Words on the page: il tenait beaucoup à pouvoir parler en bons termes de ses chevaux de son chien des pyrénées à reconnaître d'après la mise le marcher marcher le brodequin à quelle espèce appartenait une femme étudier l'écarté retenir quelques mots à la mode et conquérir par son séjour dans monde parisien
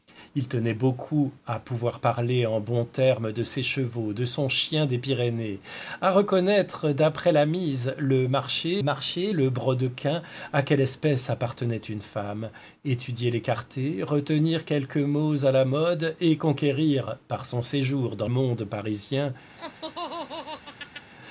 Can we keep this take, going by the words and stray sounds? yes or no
no